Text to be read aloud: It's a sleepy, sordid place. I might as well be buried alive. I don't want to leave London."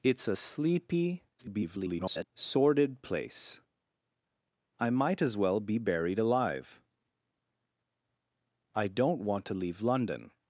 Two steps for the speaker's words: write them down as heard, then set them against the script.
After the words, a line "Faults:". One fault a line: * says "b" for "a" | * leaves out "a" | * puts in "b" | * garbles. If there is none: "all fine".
It's a sleepy, [garbled] sordid place. I might as well be buried alive. I don't want to leave London."
Faults:
* garbles